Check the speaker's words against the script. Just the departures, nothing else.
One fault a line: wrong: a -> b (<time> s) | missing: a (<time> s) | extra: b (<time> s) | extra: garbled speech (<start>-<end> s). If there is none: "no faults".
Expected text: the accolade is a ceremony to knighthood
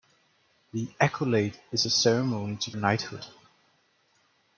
no faults